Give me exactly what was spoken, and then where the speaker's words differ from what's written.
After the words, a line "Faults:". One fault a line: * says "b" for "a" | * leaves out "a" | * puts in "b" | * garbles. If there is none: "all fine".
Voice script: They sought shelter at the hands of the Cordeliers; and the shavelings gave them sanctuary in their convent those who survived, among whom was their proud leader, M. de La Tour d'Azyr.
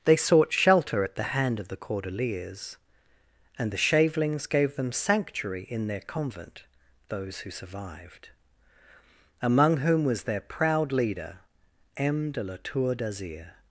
They sought shelter at the hand of the Cordeliers; and the shavelings gave them sanctuary in their convent those who survived, among whom was their proud leader, M. de La Tour d'Azyr.
Faults:
* says "hand" for "hands"